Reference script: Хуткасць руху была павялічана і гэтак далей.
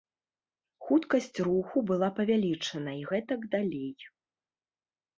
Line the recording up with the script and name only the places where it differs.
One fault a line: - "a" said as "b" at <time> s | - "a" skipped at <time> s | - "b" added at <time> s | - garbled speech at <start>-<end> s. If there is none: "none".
none